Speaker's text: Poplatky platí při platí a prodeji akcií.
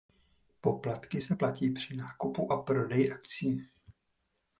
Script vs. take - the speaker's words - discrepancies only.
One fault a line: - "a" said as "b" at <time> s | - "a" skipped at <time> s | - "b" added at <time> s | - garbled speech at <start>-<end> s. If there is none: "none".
- "se" added at 1.2 s
- "platí" said as "nákupu" at 2.0 s